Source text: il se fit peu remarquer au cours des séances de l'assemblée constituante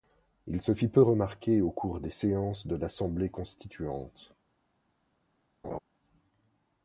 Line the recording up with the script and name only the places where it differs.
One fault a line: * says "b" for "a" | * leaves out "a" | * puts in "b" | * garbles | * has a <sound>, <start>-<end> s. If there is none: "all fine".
* has a laugh, 5.6-5.8 s